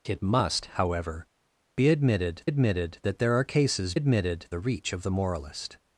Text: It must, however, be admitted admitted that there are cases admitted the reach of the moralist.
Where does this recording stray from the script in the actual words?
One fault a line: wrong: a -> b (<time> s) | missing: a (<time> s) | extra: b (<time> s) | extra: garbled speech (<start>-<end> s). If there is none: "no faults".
no faults